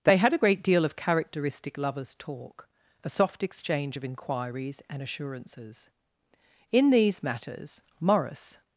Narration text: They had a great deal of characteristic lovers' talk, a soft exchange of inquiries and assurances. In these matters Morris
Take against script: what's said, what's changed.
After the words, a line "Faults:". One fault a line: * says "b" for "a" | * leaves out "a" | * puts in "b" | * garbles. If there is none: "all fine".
They had a great deal of characteristic lovers' talk, a soft exchange of inquiries and assurances. In these matters Morris
Faults:
all fine